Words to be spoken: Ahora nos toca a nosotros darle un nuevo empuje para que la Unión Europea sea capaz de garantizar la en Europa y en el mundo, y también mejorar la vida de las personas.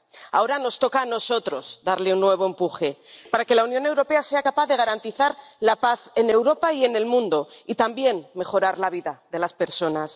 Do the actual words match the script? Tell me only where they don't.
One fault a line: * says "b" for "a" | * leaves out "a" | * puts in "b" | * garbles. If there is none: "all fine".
* puts in "paz"